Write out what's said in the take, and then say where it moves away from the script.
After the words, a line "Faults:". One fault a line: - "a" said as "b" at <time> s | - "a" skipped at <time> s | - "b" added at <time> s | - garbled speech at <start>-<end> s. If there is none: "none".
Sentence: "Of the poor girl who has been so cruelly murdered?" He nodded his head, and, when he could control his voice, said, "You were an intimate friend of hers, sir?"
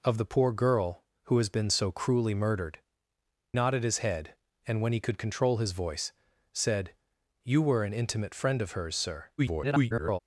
"Of the poor girl who has been so cruelly murdered?" Nodded his head, and, when he could control his voice, said, "You were an intimate friend of hers, sir?" [garbled]
Faults:
- "He" skipped at 2.8 s
- garbled speech at 9.4-10.2 s